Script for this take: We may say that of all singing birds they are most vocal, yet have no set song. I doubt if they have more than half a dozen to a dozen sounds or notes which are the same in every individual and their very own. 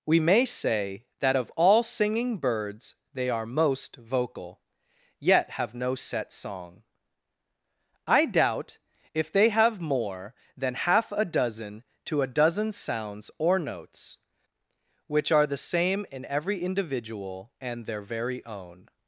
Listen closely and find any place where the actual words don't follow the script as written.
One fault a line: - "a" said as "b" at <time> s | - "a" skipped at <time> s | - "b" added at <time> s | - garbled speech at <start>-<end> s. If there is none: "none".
none